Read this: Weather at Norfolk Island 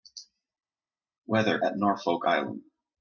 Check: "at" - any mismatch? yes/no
no